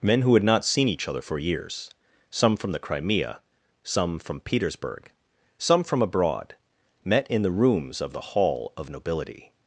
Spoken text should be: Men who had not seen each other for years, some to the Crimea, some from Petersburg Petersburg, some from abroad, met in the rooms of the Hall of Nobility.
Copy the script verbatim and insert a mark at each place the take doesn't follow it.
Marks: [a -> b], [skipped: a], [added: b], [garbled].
Men who had not seen each other for years, some [to -> from] the Crimea, some from Petersburg [skipped: Petersburg,] some from abroad, met in the rooms of the Hall of Nobility.